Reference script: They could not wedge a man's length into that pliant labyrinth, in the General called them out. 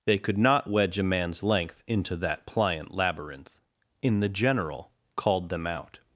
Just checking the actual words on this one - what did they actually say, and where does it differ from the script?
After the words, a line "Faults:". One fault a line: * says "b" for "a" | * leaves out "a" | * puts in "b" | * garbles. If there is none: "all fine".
They could not wedge a man's length into that pliant labyrinth, in the General called them out.
Faults:
all fine